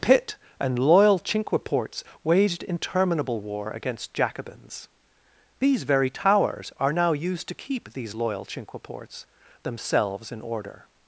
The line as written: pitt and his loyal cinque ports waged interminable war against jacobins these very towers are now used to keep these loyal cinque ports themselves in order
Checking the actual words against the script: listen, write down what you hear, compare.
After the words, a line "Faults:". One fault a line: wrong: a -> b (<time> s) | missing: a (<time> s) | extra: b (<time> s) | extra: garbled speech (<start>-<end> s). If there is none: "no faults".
pitt and loyal cinque ports waged interminable war against jacobins these very towers are now used to keep these loyal cinque ports themselves in order
Faults:
missing: his (0.8 s)